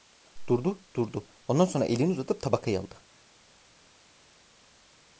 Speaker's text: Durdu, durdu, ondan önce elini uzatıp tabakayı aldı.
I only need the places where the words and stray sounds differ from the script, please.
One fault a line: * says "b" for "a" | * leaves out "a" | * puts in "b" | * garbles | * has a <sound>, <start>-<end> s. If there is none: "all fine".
* says "sonra" for "önce"